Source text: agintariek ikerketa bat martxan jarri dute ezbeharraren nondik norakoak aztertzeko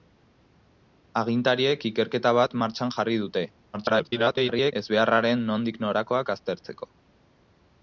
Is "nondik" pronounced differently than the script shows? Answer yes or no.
no